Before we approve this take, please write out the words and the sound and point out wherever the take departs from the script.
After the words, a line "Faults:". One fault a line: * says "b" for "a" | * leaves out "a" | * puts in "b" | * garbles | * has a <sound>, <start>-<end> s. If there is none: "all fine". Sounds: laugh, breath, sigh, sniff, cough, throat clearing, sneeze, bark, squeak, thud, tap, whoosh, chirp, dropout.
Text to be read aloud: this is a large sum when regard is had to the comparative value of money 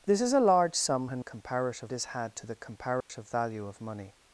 this is a large sum when comparative is had to the comparative value of money
Faults:
* says "comparative" for "regard"
* has a dropout, 3.0-3.1 s